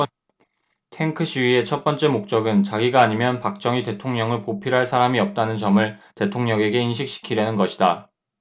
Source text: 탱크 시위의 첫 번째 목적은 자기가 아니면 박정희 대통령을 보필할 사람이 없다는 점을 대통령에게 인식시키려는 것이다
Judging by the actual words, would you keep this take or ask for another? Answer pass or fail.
pass